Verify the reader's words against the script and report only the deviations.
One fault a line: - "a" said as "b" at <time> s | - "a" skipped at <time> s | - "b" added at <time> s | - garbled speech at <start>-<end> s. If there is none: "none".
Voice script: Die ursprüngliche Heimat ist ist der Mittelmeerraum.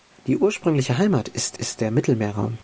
none